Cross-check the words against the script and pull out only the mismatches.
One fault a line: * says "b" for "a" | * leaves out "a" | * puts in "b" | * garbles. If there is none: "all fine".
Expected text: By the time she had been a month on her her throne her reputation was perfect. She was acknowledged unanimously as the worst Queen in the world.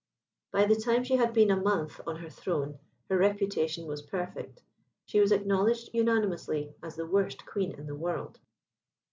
* leaves out "her"